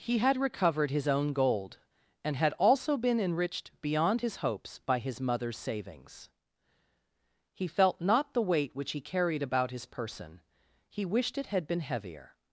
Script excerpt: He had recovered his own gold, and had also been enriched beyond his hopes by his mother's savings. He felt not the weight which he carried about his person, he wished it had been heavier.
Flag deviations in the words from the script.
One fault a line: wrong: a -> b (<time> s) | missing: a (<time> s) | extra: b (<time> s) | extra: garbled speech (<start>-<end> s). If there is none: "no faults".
no faults